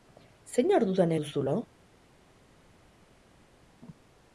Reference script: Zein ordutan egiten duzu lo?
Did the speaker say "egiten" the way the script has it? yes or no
no